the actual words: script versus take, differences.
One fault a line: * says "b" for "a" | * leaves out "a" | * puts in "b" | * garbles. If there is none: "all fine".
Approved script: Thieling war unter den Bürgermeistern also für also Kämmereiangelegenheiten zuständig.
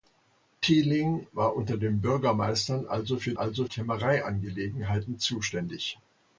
all fine